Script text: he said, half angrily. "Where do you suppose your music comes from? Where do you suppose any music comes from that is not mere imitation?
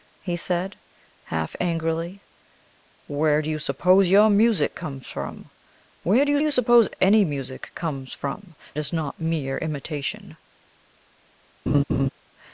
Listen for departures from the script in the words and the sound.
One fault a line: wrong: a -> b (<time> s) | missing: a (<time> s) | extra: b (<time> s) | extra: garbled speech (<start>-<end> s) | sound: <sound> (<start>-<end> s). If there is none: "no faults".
extra: you (6.4 s)
missing: that (8.6 s)
sound: laugh (11.7-12.1 s)